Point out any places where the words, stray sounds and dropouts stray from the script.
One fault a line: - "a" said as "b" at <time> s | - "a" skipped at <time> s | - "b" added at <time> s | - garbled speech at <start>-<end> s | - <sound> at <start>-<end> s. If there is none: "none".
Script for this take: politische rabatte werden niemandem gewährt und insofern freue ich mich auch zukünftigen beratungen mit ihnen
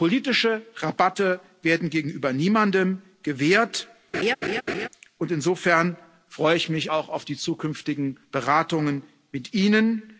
- "gegenüber" added at 1.9 s
- laugh at 4.1-4.9 s
- "auf die" added at 7.1 s